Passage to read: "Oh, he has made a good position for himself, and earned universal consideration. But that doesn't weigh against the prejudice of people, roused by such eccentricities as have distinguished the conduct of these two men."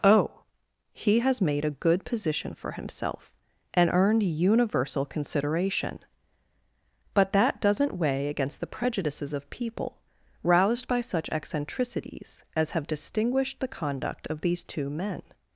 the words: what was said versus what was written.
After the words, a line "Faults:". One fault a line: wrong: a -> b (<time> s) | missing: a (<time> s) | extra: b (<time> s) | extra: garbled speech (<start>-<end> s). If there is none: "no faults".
"Oh, he has made a good position for himself, and earned universal consideration. But that doesn't weigh against the prejudices of people, roused by such eccentricities as have distinguished the conduct of these two men."
Faults:
wrong: prejudice -> prejudices (8.7 s)